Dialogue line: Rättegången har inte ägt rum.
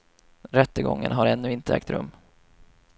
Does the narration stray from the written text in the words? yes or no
yes